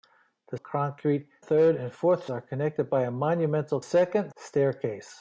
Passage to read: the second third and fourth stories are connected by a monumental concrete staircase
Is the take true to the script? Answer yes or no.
no